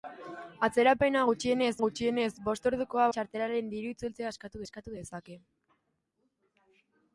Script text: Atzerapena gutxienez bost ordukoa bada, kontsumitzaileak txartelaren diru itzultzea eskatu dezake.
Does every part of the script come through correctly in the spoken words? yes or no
no